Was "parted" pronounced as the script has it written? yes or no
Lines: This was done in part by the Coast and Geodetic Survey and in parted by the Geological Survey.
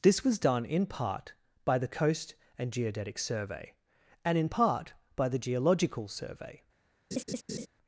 no